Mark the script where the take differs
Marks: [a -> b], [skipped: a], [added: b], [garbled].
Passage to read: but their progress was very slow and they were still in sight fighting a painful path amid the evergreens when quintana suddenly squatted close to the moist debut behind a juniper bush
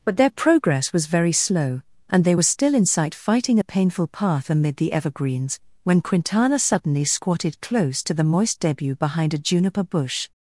but their progress was very slow and they were still in sight fighting a painful path amid the evergreens when quintana suddenly squatted close to the moist debut behind a juniper bush